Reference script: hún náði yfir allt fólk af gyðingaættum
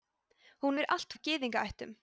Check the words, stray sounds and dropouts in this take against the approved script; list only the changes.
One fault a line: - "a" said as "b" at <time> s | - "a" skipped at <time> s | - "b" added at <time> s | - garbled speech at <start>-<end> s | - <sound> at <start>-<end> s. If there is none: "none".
- "náði" skipped at 0.8 s
- "fólk" skipped at 1.2 s